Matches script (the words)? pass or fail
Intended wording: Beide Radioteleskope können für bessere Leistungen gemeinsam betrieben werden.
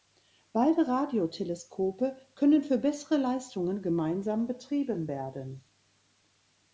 pass